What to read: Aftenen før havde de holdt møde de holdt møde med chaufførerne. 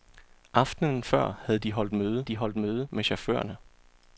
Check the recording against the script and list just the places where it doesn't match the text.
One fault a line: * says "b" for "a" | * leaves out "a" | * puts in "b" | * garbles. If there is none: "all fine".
all fine